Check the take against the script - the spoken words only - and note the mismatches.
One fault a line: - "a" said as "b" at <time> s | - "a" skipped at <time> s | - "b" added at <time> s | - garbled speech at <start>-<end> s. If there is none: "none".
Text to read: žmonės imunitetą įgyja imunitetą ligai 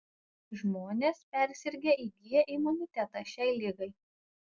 - "imunitetą" said as "persirgę" at 1.4 s
- "šiai" added at 3.3 s